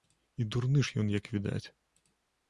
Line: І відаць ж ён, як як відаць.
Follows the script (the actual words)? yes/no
no